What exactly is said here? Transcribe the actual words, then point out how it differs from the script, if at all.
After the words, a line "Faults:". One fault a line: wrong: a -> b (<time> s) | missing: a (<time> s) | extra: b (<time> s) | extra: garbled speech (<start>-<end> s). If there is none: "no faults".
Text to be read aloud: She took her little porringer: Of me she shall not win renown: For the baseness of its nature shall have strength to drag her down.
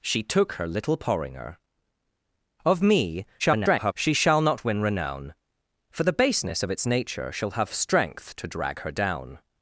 She took her little porringer: Of me [garbled] she shall not win renown: For the baseness of its nature shall have strength to drag her down.
Faults:
extra: garbled speech (3.4-3.9 s)